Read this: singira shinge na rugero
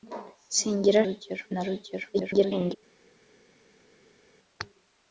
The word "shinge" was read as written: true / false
false